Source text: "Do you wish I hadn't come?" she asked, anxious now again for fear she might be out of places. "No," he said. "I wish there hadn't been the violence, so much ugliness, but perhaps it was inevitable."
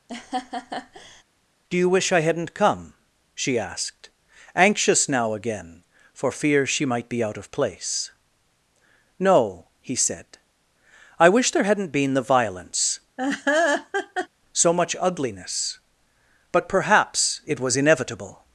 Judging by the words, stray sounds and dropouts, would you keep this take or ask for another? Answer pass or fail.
fail